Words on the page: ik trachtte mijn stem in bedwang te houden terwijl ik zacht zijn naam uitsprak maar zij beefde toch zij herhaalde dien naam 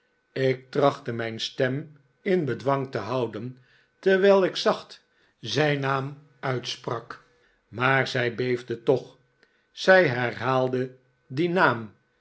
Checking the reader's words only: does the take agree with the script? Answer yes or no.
yes